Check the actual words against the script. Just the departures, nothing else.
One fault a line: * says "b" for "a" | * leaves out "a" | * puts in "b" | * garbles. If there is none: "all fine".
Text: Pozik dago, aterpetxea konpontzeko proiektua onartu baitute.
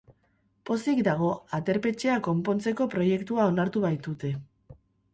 all fine